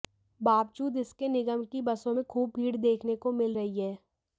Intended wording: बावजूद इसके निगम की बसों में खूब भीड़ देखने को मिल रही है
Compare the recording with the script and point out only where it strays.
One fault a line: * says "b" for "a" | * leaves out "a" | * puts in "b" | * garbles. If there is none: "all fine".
all fine